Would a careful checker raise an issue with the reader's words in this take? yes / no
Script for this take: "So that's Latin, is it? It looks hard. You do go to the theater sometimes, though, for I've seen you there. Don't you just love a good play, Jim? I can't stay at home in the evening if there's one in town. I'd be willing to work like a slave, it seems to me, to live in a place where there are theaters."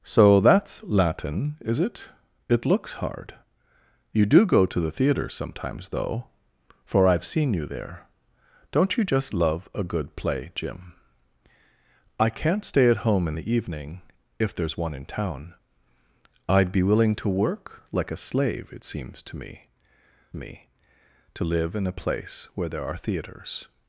yes